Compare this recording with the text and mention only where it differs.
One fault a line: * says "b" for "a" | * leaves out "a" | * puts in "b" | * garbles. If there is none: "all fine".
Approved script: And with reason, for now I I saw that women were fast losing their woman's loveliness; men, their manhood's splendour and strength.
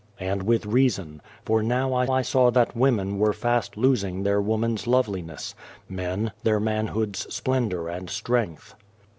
all fine